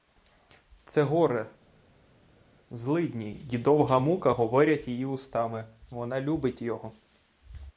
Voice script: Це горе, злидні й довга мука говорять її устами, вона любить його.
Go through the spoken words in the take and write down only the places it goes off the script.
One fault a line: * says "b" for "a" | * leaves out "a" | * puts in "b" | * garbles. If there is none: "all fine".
all fine